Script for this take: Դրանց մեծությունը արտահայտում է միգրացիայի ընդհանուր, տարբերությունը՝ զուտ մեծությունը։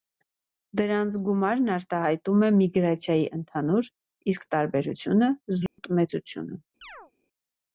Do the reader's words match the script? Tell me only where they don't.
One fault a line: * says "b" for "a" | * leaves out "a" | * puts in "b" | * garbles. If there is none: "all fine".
* says "գումարն" for "մեծությունը"
* puts in "իսկ"